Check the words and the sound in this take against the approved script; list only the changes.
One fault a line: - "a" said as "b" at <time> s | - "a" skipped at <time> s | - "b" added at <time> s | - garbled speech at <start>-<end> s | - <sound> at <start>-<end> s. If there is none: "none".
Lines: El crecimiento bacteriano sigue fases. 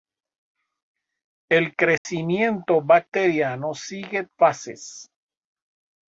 - dropout at 2.0-2.1 s